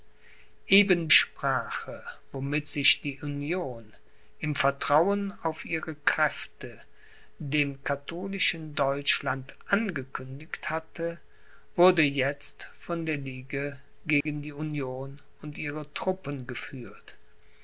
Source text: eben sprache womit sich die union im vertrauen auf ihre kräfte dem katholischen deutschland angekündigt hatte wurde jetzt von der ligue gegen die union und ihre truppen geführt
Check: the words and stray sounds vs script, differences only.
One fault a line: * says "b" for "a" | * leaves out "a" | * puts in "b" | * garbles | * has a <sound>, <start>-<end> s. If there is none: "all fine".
* has a dropout, 14.2-14.3 s